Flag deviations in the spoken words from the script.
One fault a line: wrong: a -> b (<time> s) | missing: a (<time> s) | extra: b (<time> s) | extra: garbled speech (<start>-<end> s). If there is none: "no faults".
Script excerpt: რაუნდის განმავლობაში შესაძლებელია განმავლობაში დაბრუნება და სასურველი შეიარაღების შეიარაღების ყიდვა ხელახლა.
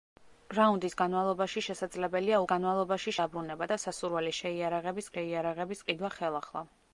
no faults